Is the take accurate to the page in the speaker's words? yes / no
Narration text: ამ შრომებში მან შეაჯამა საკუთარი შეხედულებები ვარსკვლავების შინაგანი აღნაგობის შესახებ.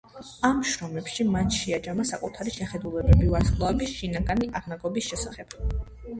yes